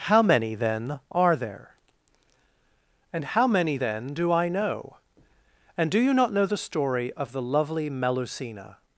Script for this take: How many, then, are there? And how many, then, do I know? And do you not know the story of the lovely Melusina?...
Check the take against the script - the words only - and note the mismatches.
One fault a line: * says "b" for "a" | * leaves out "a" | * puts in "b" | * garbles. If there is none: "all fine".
all fine